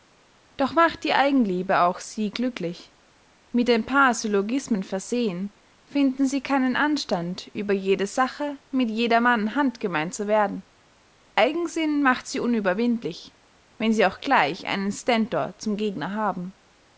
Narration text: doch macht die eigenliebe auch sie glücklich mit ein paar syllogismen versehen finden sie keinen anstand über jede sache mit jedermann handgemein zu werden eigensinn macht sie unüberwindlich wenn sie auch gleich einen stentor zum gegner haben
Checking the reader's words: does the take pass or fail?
pass